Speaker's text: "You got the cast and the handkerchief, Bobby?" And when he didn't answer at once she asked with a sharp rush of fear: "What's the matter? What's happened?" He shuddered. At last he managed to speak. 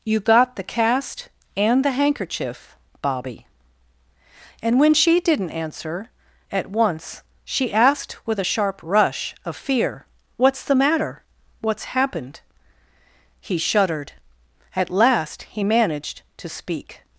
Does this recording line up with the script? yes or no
no